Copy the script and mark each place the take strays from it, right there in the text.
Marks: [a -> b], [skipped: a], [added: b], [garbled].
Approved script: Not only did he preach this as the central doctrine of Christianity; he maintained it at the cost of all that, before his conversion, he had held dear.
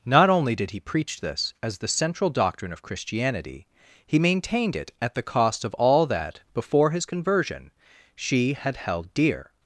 Not only did he preach this as the central doctrine of Christianity; he maintained it at the cost of all that, before his conversion, [he -> she] had held dear.